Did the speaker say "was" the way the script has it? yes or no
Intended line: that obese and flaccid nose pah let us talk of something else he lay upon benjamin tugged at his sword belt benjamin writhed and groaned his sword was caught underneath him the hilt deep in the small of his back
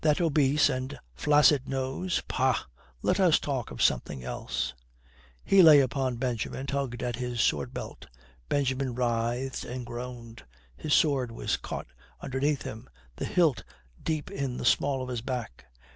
yes